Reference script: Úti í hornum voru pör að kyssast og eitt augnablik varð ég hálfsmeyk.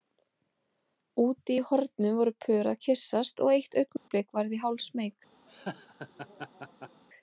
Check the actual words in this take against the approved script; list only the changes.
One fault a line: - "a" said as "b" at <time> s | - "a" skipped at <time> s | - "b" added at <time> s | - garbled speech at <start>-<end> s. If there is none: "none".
none